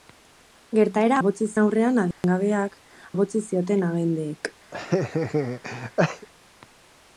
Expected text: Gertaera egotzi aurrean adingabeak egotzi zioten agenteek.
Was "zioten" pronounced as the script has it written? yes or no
yes